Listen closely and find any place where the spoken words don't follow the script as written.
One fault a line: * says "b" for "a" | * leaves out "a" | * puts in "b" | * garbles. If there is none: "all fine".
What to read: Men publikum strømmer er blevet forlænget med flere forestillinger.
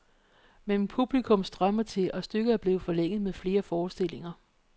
* puts in "til og stykket"